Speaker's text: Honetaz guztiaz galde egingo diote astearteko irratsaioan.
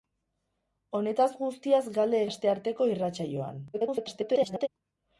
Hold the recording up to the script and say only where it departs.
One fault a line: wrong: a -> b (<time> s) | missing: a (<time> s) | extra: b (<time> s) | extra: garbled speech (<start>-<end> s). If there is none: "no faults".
missing: egingo diote (2.2 s)
extra: garbled speech (3.7-4.7 s)